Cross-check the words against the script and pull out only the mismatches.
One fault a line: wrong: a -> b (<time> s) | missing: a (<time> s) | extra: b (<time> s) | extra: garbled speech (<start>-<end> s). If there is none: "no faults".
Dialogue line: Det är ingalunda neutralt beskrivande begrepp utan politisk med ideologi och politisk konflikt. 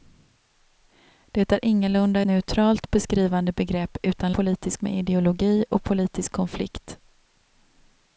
no faults